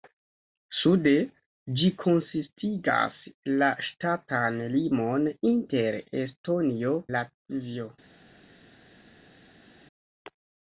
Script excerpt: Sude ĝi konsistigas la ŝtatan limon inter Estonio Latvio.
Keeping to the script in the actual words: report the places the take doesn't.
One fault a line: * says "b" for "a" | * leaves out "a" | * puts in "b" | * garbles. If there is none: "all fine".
all fine